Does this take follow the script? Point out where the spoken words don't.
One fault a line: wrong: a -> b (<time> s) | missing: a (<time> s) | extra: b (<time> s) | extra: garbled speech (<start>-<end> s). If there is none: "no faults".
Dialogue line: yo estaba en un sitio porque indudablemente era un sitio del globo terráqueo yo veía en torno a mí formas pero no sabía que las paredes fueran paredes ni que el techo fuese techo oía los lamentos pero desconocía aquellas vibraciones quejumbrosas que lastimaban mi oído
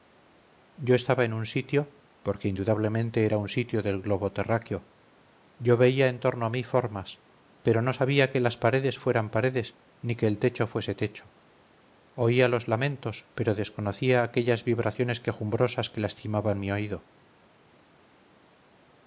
no faults